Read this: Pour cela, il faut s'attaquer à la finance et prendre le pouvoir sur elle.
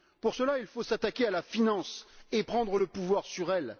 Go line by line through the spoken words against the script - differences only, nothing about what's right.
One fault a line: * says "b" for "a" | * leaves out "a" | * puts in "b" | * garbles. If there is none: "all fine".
all fine